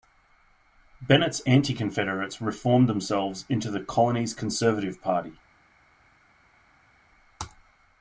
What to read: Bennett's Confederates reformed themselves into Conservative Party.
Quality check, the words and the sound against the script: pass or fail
fail